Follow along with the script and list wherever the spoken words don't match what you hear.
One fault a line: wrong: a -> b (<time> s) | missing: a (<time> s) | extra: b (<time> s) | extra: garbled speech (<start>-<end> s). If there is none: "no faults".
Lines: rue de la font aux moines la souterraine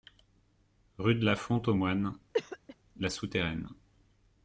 no faults